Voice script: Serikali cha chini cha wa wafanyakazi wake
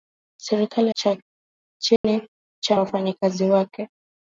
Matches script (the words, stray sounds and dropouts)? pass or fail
fail